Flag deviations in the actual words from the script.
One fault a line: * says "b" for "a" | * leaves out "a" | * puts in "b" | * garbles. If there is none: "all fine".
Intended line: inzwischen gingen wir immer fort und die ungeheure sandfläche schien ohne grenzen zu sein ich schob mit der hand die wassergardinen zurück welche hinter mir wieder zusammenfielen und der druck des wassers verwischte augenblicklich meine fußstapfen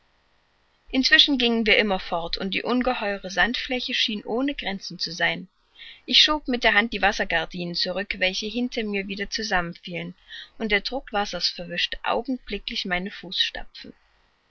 * leaves out "des"